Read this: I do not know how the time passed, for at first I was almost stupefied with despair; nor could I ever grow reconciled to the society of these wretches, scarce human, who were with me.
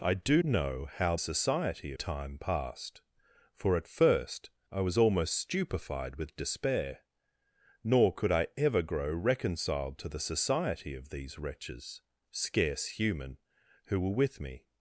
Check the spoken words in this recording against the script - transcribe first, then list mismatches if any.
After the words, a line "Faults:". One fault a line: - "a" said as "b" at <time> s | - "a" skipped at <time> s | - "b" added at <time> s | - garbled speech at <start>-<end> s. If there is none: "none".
I do know how society time passed, for at first I was almost stupefied with despair; nor could I ever grow reconciled to the society of these wretches, scarce human, who were with me.
Faults:
- "not" skipped at 0.4 s
- "the" said as "society" at 1.2 s